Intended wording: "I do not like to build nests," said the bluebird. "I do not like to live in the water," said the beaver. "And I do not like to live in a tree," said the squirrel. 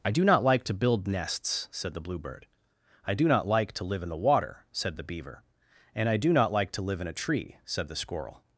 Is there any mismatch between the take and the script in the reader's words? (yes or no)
no